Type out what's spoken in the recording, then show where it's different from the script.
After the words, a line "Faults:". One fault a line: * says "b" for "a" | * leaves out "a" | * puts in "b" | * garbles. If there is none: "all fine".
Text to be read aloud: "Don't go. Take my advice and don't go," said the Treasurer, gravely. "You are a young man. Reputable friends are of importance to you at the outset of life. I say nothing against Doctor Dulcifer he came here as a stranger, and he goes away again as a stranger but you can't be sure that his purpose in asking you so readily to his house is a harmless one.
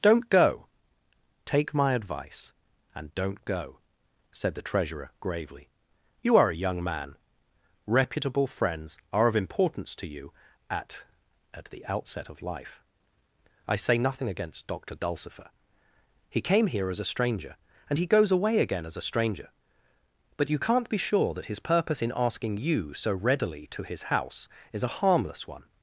"Don't go. Take my advice and don't go," said the Treasurer, gravely. "You are a young man. Reputable friends are of importance to you at at the outset of life. I say nothing against Doctor Dulcifer he came here as a stranger, and he goes away again as a stranger but you can't be sure that his purpose in asking you so readily to his house is a harmless one.
Faults:
* puts in "at"